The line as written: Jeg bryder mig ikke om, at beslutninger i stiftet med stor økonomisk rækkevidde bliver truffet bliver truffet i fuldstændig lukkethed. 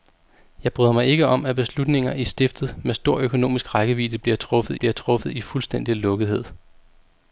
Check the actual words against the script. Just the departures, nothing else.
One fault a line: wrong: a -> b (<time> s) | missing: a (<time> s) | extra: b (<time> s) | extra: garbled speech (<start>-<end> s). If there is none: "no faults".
no faults